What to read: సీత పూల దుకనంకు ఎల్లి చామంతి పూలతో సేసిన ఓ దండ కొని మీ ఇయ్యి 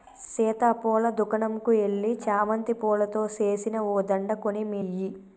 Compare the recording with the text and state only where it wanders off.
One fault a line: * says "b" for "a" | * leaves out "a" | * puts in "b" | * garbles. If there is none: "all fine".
all fine